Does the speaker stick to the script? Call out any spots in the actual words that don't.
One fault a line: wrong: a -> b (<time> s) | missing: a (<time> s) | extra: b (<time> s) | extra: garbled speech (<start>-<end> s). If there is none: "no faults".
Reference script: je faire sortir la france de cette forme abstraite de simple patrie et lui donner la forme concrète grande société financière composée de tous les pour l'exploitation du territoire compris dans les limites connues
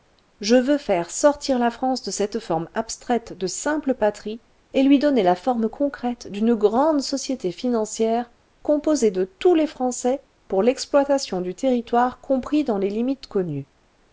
extra: veux (0.6 s)
extra: d'une (6.3 s)
extra: français (9.7 s)